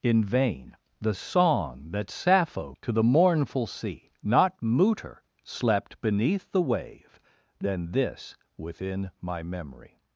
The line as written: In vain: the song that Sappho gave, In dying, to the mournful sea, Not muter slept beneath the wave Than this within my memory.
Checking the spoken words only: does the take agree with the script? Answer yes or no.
no